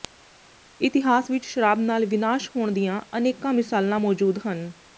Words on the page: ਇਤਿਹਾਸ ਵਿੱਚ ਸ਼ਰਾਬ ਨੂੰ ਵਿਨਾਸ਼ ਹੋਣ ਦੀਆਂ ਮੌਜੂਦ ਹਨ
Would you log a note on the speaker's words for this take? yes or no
yes